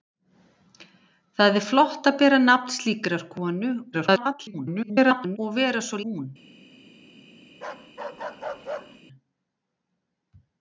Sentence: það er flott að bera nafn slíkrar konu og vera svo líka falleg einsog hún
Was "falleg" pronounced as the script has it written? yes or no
no